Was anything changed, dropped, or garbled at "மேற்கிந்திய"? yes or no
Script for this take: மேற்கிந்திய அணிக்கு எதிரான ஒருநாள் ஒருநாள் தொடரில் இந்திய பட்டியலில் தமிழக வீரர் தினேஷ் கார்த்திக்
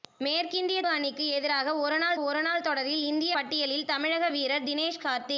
no